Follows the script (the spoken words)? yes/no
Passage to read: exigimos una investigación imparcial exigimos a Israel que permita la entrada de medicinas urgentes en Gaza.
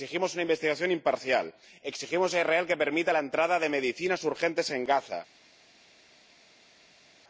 yes